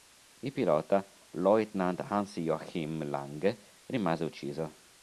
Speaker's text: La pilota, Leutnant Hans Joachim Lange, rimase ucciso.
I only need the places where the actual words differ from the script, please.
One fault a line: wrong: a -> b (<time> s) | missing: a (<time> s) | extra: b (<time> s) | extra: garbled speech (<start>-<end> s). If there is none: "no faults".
wrong: La -> Il (0.4 s)